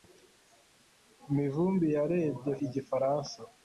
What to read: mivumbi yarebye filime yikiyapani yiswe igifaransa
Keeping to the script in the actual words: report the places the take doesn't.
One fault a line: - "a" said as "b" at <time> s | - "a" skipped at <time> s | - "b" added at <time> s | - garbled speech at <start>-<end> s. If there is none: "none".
- "filime yikiyapani yiswe" skipped at 2.5 s